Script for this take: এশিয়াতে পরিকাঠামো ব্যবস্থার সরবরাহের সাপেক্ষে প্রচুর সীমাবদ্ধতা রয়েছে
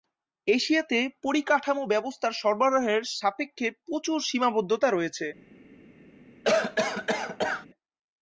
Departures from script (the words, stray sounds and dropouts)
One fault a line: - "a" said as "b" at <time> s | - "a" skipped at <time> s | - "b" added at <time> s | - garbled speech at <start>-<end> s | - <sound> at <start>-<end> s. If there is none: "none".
- cough at 6.4-7.7 s